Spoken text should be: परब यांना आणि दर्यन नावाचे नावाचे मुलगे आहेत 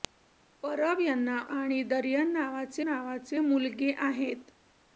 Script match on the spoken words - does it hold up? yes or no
yes